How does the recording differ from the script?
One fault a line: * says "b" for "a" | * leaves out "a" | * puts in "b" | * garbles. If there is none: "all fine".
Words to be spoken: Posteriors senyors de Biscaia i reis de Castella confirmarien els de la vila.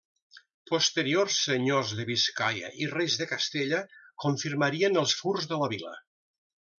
* puts in "furs"